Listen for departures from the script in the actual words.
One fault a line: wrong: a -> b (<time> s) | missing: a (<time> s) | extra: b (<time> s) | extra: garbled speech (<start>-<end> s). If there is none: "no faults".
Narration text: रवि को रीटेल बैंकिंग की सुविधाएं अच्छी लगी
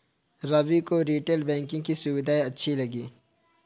no faults